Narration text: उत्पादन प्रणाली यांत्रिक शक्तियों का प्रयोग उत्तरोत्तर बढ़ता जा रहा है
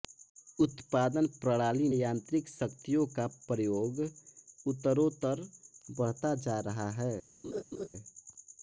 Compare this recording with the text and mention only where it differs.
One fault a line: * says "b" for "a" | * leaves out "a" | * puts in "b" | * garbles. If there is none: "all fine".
all fine